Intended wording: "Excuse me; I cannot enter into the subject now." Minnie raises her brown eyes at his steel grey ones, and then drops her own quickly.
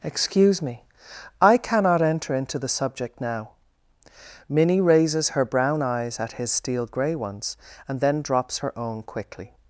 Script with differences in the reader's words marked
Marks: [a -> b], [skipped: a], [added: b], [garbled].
"Excuse me; I cannot enter into the subject now." Minnie raises her brown eyes at his steel grey ones, and then drops her own quickly.